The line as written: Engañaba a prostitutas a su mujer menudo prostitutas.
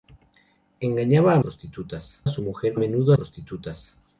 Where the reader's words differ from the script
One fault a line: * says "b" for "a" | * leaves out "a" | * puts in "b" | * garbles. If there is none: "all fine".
all fine